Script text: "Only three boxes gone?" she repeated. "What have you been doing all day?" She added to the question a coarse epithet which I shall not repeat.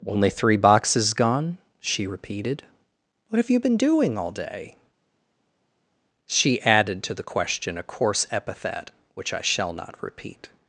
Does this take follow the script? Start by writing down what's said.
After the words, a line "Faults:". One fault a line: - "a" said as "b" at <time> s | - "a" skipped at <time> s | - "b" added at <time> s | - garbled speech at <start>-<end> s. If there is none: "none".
"Only three boxes gone?" she repeated. "What have you been doing all day?" She added to the question a coarse epithet which I shall not repeat.
Faults:
none